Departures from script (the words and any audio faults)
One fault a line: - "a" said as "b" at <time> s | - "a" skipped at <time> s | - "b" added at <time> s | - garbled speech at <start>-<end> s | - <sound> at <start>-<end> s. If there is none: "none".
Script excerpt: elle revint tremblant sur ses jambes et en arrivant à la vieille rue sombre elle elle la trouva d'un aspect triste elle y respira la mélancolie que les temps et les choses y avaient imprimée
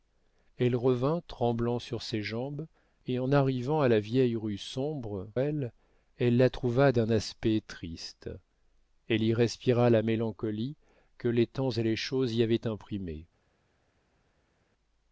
none